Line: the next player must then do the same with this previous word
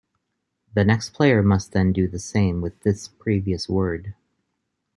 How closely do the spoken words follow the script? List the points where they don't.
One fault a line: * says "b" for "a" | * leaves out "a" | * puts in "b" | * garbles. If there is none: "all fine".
all fine